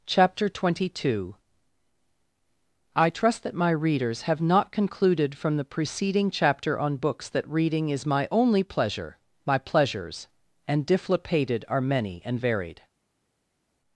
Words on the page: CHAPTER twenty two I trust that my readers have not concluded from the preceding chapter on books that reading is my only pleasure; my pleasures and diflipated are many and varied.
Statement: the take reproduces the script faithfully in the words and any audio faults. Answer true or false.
true